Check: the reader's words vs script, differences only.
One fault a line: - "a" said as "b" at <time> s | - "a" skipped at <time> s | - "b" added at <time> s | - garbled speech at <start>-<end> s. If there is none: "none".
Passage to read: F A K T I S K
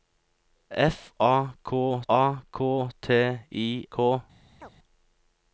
- "A K" added at 2.1 s
- "S" skipped at 3.9 s